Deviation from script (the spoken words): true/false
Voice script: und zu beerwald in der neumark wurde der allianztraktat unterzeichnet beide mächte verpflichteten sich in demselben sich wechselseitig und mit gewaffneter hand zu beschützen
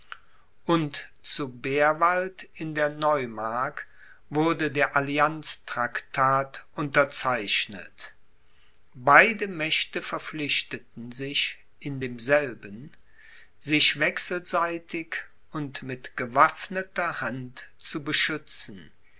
false